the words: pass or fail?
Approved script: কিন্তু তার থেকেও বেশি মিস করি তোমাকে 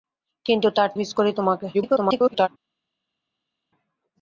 fail